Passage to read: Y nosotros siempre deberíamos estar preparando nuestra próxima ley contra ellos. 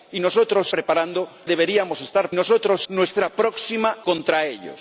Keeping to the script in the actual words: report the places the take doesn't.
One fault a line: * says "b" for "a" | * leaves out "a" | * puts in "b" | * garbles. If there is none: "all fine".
* says "preparando" for "siempre"
* says "nosotros" for "preparando"
* leaves out "ley"